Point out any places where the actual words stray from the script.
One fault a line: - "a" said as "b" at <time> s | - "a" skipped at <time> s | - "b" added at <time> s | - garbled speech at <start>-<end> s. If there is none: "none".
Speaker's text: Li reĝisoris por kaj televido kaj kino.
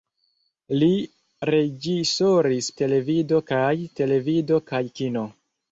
- "por" said as "televido" at 2.8 s